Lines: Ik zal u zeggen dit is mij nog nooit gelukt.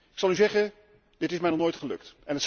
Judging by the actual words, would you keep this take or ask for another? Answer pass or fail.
pass